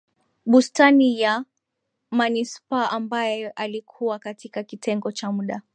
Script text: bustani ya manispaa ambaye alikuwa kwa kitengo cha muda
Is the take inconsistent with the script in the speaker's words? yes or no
yes